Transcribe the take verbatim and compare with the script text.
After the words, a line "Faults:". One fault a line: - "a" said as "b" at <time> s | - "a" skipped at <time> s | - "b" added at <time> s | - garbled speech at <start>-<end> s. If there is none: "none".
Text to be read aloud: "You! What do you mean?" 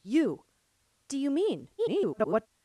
"You! Do you mean?" [garbled]
Faults:
- "What" skipped at 0.5 s
- garbled speech at 1.8-2.5 s